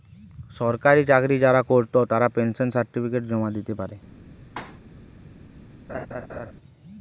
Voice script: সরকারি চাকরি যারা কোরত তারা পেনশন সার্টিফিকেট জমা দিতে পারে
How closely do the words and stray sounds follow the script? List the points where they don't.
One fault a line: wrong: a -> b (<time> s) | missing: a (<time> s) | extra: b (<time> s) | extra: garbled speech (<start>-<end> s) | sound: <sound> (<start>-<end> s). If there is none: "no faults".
sound: thud (4.6-4.8 s)
sound: laugh (5.9-6.5 s)